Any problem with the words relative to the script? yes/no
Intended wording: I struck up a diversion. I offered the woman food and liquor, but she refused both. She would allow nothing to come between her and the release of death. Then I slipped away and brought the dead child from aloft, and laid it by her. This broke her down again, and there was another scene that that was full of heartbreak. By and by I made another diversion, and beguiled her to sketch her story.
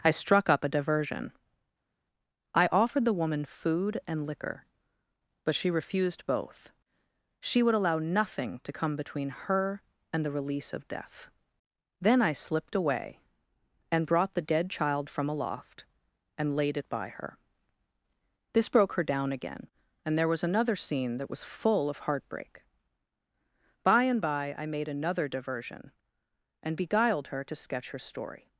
yes